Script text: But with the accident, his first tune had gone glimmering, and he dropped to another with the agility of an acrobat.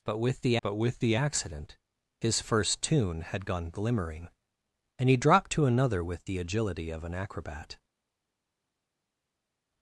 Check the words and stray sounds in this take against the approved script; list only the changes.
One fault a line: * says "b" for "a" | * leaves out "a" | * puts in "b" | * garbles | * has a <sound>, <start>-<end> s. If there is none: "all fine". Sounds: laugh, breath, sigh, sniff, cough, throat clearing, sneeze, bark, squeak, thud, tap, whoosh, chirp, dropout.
* puts in "but with the"